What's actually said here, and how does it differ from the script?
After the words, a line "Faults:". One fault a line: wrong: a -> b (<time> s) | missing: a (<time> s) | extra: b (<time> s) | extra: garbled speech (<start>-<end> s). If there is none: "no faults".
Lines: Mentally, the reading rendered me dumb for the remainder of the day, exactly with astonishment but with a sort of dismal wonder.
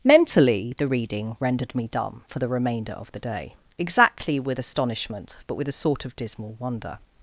Mentally, the reading rendered me dumb for the remainder of the day, exactly with astonishment but with a sort of dismal wonder.
Faults:
no faults